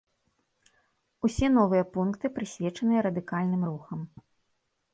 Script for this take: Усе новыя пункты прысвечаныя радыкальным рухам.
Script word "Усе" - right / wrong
right